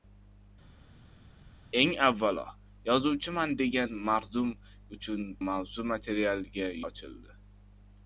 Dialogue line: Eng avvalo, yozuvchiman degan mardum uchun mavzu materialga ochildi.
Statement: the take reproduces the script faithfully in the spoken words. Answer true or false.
true